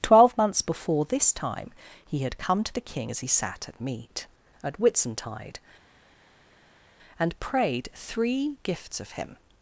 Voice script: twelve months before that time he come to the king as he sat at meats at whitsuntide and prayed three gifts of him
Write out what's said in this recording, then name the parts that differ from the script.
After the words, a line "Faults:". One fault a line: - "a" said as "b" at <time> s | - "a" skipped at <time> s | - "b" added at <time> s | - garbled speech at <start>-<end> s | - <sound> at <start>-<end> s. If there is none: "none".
twelve months before this time he had come to the king as he sat at meat at whitsuntide and prayed three gifts of him
Faults:
- "that" said as "this" at 1.1 s
- "had" added at 2.2 s
- "meats" said as "meat" at 3.8 s